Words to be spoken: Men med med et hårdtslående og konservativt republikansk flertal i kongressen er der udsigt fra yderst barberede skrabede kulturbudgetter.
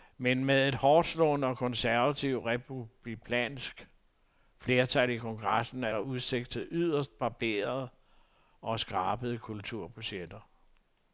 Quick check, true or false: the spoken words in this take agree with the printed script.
false